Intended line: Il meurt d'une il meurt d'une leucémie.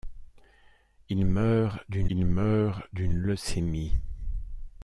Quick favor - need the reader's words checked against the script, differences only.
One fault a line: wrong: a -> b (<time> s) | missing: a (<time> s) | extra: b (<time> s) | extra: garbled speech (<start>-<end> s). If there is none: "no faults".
no faults